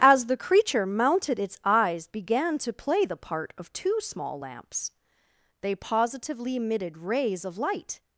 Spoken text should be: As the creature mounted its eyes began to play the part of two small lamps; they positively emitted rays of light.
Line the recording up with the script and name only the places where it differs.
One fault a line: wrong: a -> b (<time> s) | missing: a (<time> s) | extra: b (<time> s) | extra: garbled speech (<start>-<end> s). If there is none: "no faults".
no faults